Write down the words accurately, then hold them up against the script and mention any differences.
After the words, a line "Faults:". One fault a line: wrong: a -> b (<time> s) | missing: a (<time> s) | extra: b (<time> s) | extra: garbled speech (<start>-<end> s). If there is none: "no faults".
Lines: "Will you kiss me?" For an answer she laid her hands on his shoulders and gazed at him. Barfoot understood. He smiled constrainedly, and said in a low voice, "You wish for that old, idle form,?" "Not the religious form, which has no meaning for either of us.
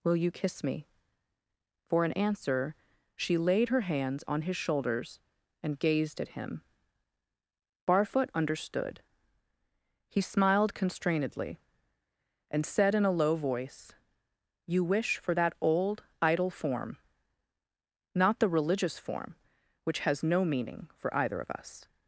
"Will you kiss me?" For an answer she laid her hands on his shoulders and gazed at him. Barfoot understood. He smiled constrainedly, and said in a low voice, "You wish for that old, idle form,?" "Not the religious form, which has no meaning for either of us.
Faults:
no faults